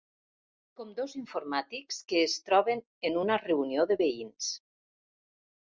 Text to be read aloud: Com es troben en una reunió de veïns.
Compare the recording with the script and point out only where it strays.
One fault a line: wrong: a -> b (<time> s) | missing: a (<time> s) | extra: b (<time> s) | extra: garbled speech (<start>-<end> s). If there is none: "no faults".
extra: dos informàtics que (1.0 s)